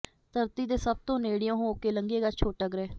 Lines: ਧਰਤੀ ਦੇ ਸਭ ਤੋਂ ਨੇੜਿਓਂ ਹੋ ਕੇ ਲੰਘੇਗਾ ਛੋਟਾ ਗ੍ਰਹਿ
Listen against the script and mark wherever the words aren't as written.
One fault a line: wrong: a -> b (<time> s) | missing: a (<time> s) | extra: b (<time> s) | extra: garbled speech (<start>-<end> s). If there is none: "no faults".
no faults